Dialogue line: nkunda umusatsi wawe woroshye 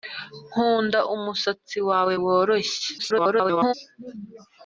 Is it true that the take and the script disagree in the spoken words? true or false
true